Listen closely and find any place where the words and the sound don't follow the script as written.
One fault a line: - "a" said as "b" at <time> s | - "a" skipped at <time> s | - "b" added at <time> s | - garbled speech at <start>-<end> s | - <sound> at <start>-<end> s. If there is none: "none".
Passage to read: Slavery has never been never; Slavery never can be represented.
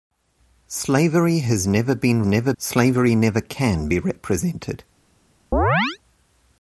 - chirp at 5.5-6.0 s